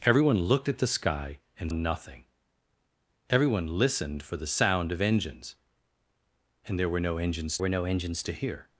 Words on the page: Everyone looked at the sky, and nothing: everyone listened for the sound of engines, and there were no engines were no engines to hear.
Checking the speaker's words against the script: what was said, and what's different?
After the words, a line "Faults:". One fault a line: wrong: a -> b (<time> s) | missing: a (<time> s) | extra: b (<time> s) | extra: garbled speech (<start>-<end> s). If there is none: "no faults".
Everyone looked at the sky, and nothing: everyone listened for the sound of engines, and there were no engines were no engines to hear.
Faults:
no faults